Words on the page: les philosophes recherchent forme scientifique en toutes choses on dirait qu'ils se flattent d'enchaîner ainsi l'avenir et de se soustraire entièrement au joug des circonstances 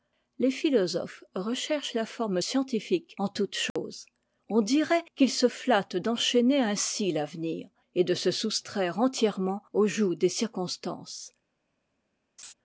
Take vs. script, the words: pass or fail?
fail